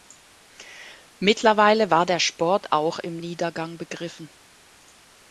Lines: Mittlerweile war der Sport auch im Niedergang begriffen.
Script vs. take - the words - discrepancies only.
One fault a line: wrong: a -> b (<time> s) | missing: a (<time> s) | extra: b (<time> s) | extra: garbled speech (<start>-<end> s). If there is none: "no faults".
no faults